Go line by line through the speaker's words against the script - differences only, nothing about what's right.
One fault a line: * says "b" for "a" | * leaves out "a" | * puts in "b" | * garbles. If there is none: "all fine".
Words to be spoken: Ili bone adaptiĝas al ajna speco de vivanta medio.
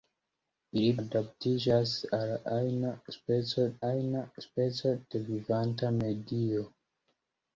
* leaves out "bone"
* puts in "ajna speco"